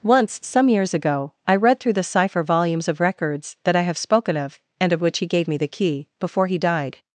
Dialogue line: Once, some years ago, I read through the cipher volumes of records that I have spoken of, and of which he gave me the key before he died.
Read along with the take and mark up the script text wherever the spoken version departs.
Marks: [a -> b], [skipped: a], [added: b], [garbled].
Once, some years ago, I read through the cipher volumes of records that I have spoken of, and of which he gave me the key before he died.